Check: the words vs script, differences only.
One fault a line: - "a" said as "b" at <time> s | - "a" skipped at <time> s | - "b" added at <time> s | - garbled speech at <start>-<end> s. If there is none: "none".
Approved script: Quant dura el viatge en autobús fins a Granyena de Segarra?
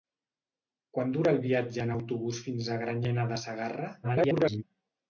- garbled speech at 4.0-4.6 s